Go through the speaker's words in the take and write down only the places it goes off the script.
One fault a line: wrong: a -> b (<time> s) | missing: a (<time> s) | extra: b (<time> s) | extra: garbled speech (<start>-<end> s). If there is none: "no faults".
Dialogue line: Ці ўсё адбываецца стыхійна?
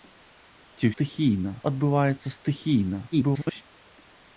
wrong: ўсё -> стыхійна (0.9 s)
extra: garbled speech (3.1-3.6 s)